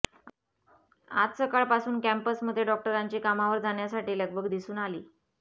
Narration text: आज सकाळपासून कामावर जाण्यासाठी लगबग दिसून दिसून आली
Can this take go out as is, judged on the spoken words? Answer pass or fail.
fail